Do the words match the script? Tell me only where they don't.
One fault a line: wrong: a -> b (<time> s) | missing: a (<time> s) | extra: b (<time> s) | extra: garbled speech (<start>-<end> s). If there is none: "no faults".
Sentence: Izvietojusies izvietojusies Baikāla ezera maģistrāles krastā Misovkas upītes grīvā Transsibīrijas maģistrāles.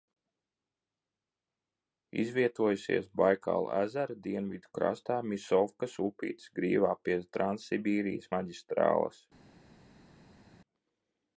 missing: izvietojusies (3.1 s)
wrong: maģistrāles -> dienvidu (4.3 s)
extra: pie (7.1 s)